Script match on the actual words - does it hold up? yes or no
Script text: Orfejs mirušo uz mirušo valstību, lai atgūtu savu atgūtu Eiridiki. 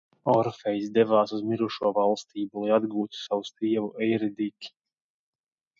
no